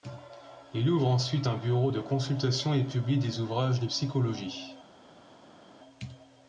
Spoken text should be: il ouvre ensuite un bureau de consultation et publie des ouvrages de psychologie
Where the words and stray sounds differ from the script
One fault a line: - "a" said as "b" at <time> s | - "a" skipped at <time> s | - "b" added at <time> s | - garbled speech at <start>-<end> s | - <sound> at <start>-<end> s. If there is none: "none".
none